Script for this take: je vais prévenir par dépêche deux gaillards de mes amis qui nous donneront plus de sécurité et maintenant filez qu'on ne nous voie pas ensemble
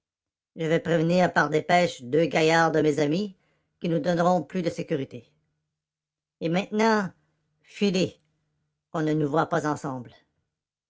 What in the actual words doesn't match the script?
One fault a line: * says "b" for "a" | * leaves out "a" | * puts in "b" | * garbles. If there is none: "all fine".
all fine